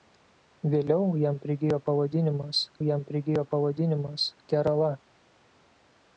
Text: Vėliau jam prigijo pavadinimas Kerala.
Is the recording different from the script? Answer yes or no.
yes